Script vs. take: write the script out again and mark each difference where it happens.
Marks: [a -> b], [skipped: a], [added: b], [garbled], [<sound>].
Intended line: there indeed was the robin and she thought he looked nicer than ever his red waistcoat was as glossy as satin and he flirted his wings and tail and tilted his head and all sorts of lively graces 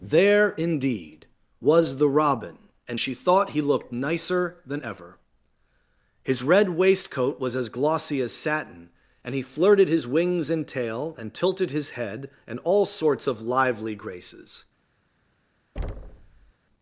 there indeed was the robin and she thought he looked nicer than ever his red waistcoat was as glossy as satin and he flirted his wings and tail and tilted his head and all sorts of lively graces [thud]